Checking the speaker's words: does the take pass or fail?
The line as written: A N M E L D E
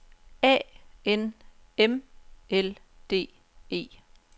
fail